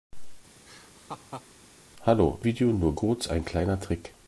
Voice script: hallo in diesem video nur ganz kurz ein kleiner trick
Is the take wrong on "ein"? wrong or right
right